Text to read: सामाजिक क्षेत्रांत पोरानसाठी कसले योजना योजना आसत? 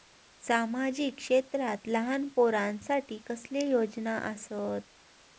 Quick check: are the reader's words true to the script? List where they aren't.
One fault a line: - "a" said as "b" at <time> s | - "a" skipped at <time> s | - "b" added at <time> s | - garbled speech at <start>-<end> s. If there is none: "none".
- "लहान" added at 1.9 s
- "योजना" skipped at 4.2 s